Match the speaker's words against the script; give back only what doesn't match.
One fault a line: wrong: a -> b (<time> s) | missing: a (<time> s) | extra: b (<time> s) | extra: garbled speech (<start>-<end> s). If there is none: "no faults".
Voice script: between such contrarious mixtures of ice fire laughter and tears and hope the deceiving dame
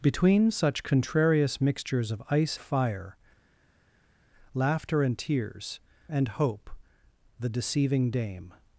no faults